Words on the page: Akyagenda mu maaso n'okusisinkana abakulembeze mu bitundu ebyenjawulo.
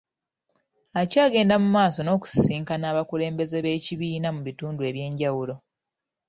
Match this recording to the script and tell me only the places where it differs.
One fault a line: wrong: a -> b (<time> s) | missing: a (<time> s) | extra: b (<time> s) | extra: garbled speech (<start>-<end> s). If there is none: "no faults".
extra: b'ekibiina (3.6 s)